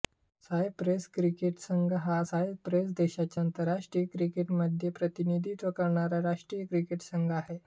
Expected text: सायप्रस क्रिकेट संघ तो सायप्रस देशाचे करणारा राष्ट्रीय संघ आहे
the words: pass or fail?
fail